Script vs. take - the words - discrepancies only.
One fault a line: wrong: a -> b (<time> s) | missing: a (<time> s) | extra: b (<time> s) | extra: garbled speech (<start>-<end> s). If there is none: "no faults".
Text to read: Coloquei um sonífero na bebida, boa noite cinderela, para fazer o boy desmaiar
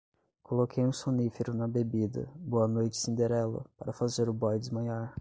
no faults